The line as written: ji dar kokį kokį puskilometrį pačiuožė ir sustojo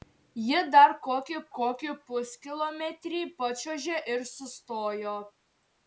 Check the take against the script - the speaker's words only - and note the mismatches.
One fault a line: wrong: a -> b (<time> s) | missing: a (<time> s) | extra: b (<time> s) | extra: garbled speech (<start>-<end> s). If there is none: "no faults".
no faults